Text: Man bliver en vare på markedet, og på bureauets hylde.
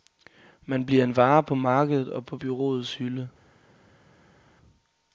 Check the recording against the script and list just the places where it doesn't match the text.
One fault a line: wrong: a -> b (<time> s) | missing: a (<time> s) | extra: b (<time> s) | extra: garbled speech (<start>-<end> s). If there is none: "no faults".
no faults